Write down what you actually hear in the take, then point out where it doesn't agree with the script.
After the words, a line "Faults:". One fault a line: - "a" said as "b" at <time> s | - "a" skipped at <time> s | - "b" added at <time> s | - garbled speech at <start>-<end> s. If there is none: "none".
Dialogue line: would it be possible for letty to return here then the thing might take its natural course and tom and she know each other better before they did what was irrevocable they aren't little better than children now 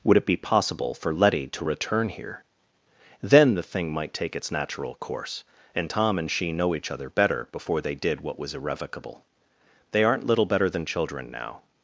would it be possible for letty to return here then the thing might take its natural course and tom and she know each other better before they did what was irrevocable they aren't little better than children now
Faults:
none